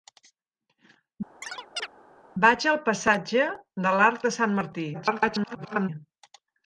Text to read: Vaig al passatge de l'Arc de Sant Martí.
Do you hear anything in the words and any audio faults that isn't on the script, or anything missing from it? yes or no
yes